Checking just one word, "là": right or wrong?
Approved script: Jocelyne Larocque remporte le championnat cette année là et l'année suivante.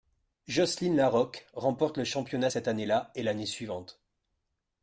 right